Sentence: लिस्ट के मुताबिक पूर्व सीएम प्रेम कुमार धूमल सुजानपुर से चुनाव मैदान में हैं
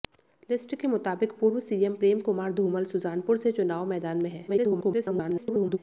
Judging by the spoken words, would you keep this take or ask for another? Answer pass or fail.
fail